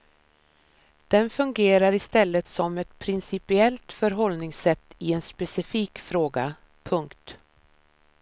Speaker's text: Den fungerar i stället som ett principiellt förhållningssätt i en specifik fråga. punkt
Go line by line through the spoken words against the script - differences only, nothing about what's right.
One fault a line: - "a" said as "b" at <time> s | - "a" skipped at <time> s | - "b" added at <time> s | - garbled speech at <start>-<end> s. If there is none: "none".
none